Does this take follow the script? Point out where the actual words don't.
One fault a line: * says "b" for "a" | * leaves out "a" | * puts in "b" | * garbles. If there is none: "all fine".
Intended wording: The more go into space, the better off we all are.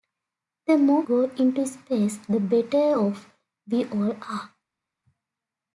all fine